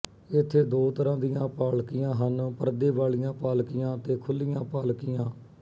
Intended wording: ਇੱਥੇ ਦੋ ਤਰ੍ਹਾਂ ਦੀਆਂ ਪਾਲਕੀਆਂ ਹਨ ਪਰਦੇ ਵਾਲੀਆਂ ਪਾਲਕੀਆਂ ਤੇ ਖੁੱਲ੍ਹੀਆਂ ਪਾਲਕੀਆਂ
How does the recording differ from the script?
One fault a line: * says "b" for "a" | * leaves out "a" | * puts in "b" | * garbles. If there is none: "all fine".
all fine